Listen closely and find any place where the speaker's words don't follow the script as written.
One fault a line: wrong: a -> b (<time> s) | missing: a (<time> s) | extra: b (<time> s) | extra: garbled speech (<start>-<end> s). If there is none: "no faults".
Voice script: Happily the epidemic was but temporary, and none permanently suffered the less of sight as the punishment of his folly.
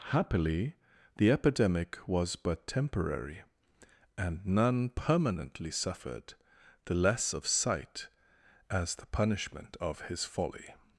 no faults